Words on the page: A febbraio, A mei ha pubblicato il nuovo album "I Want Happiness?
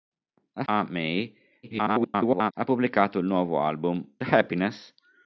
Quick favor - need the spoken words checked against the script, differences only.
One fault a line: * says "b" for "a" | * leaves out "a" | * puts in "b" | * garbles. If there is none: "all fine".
* leaves out "febbraio"
* garbles
* leaves out "I Want"